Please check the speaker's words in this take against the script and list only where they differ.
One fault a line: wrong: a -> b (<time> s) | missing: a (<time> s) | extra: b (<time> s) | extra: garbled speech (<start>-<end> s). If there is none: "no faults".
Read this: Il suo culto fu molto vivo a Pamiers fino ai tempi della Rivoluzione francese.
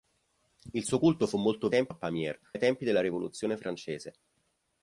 wrong: vivo -> tempi (1.7 s)
missing: fino (2.4 s)